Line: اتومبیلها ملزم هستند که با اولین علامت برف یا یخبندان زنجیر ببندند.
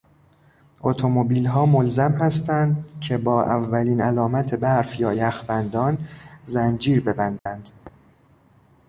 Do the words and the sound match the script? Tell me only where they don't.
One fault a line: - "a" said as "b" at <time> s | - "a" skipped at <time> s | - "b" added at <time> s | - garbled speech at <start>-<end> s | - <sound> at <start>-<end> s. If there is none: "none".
- dropout at 7.4-7.5 s